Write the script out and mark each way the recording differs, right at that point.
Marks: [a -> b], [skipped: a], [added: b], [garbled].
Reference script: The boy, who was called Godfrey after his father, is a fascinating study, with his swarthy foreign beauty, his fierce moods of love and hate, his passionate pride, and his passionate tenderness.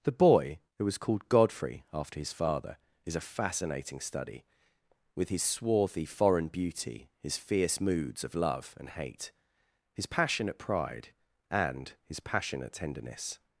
The boy, who was called Godfrey after his father, is a fascinating study, with his swarthy foreign beauty, his fierce moods of love and hate, his passionate pride, and his passionate tenderness.